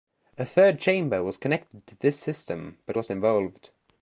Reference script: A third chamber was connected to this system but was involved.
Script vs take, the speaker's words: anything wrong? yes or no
no